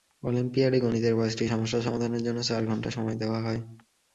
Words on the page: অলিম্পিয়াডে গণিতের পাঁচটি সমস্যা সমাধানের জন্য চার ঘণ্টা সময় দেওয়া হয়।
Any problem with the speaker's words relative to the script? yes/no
no